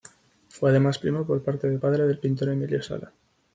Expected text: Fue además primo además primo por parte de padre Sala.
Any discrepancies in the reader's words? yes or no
yes